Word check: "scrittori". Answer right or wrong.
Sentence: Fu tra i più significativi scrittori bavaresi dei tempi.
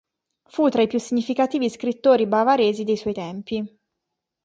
right